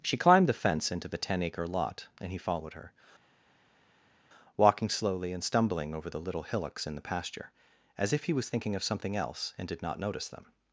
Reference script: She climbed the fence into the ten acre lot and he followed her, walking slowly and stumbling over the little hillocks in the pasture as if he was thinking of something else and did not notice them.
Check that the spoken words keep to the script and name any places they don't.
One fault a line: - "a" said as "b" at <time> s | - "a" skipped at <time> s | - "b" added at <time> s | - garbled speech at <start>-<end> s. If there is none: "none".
none